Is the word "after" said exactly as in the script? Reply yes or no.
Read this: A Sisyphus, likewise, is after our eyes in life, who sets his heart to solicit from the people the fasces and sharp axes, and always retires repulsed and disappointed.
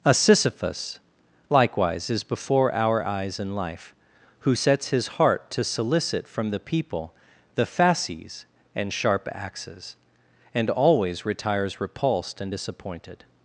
no